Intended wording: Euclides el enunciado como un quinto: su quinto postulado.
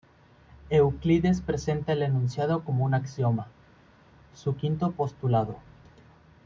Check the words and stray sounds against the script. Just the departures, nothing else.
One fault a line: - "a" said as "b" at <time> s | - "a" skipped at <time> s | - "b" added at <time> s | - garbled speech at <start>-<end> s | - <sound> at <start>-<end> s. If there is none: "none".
- "presenta" added at 1.4 s
- "quinto" said as "axioma" at 3.0 s